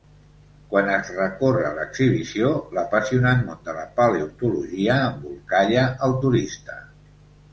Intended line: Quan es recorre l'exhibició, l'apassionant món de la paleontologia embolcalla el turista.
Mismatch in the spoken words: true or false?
false